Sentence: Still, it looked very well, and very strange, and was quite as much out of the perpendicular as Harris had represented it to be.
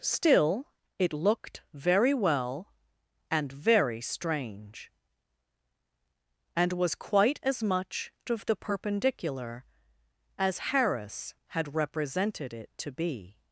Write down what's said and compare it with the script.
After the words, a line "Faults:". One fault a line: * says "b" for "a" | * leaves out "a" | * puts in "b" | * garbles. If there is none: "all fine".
Still, it looked very well, and very strange, and was quite as much of the perpendicular as Harris had represented it to be.
Faults:
* leaves out "out"